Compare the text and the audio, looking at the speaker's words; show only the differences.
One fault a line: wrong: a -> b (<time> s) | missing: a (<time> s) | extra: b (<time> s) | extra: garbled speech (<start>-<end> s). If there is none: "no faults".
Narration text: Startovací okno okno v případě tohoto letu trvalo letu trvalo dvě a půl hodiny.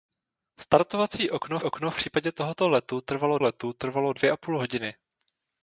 no faults